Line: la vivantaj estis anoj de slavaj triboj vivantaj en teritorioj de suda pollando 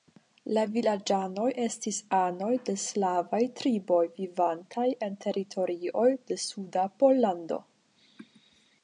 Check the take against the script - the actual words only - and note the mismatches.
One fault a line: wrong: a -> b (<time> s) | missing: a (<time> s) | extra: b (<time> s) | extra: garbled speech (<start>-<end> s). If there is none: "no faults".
wrong: vivantaj -> vilaĝanoj (0.8 s)